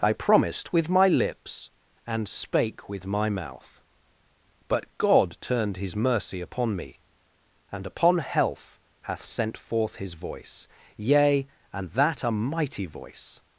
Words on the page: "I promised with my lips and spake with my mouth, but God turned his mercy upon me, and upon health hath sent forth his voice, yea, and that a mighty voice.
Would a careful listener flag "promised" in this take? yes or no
no